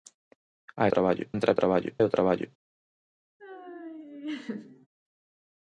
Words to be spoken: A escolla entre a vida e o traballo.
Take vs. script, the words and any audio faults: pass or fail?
fail